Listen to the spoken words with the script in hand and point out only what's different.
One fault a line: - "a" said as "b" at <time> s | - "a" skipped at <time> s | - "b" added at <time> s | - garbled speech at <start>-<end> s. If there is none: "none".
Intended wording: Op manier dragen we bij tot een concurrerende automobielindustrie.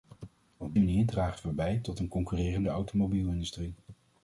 none